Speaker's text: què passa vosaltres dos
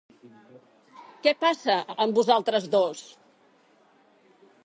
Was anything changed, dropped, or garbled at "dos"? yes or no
no